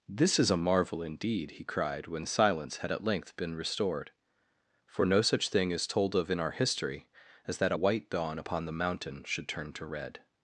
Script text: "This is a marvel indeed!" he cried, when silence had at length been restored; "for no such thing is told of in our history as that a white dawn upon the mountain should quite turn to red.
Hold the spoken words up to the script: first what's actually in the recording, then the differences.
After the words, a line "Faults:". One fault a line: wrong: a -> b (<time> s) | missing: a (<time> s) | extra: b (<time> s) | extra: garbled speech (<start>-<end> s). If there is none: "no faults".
"This is a marvel indeed!" he cried, when silence had at length been restored; "for no such thing is told of in our history as that a white dawn upon the mountain should turn to red.
Faults:
missing: quite (9.5 s)